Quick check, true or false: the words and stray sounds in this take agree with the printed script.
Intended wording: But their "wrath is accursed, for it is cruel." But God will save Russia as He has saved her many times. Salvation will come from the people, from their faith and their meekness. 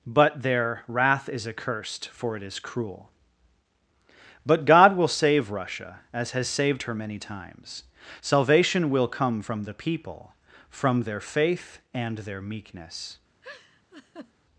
false